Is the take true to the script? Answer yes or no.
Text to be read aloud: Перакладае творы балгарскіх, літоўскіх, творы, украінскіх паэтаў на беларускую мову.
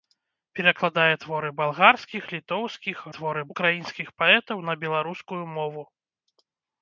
yes